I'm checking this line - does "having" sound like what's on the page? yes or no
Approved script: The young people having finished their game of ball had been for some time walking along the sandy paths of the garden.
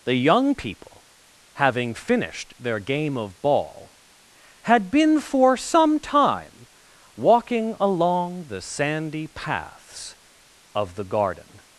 yes